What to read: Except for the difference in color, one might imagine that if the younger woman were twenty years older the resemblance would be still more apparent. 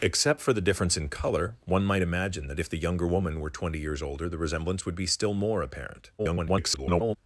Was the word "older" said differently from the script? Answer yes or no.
no